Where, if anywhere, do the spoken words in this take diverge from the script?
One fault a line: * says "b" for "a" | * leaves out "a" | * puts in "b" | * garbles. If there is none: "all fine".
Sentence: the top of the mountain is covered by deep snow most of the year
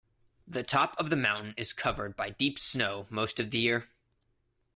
all fine